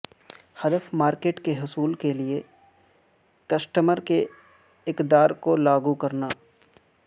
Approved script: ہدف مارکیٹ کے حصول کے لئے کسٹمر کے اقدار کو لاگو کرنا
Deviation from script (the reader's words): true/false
false